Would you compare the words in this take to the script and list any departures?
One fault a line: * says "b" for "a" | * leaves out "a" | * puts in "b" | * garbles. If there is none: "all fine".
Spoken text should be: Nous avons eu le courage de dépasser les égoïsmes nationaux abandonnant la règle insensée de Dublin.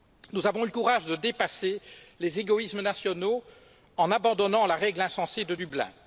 * puts in "en"